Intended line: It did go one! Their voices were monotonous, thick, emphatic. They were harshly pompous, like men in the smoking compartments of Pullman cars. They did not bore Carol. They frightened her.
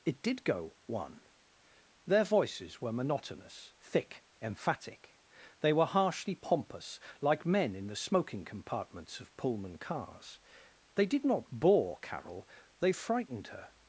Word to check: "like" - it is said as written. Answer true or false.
true